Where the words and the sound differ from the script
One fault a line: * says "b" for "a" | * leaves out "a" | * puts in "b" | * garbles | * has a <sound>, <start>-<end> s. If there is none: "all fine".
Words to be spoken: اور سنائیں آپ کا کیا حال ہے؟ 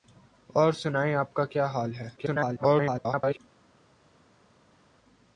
* garbles